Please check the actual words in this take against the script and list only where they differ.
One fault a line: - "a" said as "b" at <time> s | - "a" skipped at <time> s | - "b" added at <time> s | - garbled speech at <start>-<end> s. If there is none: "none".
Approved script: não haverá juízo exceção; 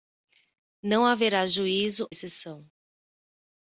none